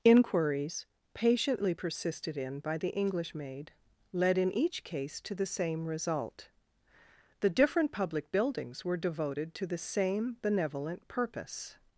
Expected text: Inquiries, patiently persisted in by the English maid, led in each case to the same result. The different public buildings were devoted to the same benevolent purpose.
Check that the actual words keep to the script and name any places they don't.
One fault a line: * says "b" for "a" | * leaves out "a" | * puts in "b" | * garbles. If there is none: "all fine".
all fine